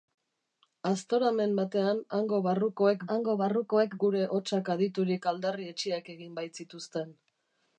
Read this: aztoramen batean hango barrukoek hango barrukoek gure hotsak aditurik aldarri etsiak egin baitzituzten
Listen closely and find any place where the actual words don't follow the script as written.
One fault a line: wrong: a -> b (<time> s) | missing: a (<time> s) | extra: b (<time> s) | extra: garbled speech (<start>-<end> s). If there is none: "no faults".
no faults